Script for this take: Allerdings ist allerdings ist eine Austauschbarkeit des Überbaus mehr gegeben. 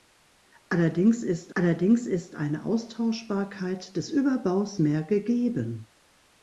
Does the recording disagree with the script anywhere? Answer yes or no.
no